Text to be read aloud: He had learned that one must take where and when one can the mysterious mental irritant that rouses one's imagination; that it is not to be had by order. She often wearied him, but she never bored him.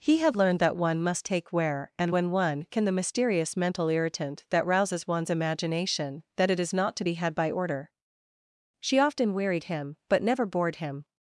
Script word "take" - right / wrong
right